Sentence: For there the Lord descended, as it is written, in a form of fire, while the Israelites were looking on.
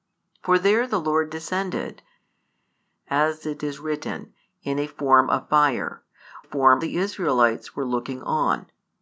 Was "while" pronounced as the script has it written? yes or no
no